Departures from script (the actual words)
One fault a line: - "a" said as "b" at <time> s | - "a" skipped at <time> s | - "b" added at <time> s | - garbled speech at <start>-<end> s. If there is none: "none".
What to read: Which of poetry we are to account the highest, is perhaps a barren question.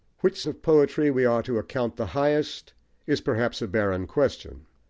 none